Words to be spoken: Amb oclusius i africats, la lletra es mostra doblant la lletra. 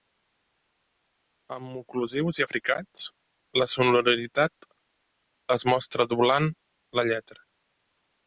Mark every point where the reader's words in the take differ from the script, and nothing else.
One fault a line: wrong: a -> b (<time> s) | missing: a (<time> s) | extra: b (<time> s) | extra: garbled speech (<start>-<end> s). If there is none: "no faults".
wrong: lletra -> sonoritat (3.7 s)